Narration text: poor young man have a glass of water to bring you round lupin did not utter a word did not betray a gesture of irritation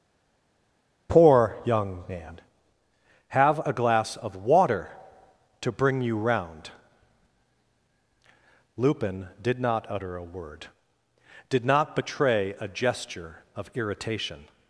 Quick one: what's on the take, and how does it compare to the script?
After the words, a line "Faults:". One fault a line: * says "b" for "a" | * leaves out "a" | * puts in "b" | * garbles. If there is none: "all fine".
poor young man have a glass of water to bring you round lupin did not utter a word did not betray a gesture of irritation
Faults:
all fine